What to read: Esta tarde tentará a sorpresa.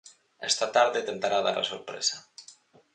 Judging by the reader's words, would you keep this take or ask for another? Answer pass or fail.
fail